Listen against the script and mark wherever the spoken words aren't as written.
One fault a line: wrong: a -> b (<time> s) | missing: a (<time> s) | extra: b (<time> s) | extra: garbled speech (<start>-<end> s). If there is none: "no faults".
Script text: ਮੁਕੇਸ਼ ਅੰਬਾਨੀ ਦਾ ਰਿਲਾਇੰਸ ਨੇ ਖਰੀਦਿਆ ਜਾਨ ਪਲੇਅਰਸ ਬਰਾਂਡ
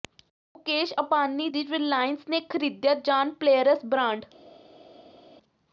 wrong: ਦਾ -> ਦੀ (1.5 s)